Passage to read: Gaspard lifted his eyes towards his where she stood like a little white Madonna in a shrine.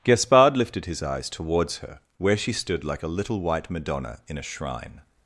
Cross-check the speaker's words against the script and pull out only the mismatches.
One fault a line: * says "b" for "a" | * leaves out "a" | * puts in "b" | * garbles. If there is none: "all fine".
* says "her" for "his"